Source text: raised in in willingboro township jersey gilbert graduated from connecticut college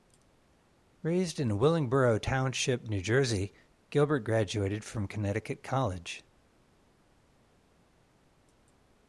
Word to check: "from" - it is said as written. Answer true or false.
true